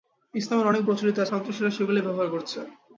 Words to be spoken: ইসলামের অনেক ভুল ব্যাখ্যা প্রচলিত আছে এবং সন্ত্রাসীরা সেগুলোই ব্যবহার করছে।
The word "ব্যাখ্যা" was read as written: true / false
false